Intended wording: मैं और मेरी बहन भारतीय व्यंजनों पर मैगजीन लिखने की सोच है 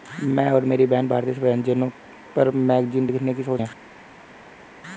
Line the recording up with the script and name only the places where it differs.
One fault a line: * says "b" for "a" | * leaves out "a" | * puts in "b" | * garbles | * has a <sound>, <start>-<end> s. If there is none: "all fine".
all fine